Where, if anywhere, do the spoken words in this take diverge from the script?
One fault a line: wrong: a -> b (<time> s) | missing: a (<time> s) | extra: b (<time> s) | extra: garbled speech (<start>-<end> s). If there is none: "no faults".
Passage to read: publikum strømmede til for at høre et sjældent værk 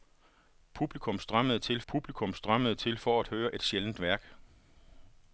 extra: publikum strømmede til (1.9 s)